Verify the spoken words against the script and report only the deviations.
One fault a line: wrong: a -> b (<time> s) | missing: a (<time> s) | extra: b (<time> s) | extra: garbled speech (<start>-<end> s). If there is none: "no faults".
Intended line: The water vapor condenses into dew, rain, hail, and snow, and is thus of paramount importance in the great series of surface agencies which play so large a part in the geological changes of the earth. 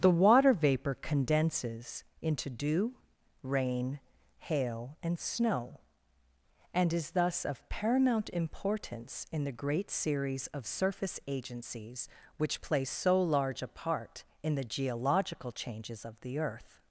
no faults